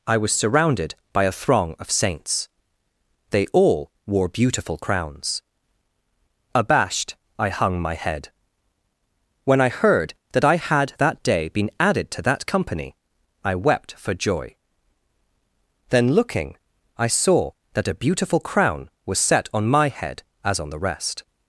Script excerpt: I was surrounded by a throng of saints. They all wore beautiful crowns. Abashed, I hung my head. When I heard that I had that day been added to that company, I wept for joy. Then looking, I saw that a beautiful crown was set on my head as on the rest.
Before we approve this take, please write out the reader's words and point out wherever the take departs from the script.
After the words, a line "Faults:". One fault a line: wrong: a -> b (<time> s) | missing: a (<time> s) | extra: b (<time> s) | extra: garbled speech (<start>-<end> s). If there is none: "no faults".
I was surrounded by a throng of saints. They all wore beautiful crowns. Abashed, I hung my head. When I heard that I had that day been added to that company, I wept for joy. Then looking, I saw that a beautiful crown was set on my head as on the rest.
Faults:
no faults